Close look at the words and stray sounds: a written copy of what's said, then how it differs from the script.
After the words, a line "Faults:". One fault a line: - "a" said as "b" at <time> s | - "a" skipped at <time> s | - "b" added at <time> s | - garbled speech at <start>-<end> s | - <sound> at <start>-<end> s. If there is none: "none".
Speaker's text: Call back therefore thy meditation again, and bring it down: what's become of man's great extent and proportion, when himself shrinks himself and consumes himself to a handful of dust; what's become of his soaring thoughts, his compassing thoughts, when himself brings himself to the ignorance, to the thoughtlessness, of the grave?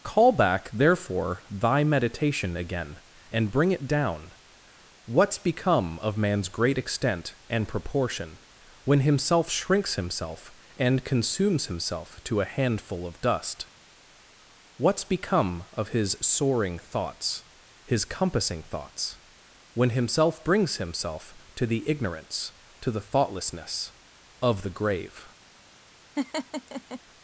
Call back therefore thy meditation again, and bring it down: what's become of man's great extent and proportion, when himself shrinks himself and consumes himself to a handful of dust; what's become of his soaring thoughts, his compassing thoughts, when himself brings himself to the ignorance, to the thoughtlessness, of the grave?
Faults:
- laugh at 26.2-27.0 s